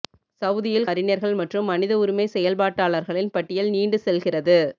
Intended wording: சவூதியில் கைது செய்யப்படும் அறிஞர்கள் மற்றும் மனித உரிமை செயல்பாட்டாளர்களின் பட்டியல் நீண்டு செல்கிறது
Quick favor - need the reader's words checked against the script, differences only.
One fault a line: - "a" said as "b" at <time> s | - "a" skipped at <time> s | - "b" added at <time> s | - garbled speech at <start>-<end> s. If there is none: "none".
- "கைது செய்யப்படும்" skipped at 0.9 s